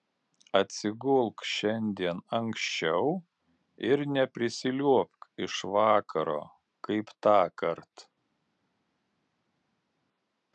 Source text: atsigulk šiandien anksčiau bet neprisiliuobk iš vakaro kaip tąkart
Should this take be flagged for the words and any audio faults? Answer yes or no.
yes